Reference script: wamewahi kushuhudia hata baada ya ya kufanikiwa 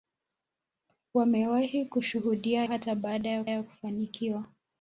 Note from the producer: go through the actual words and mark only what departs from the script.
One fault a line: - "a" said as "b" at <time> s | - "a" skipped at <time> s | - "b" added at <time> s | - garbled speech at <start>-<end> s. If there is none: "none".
none